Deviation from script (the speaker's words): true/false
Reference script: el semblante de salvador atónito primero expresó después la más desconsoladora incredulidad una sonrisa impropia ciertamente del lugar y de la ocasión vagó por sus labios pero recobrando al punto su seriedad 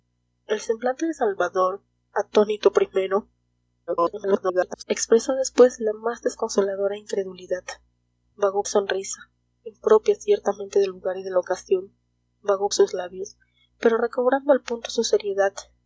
true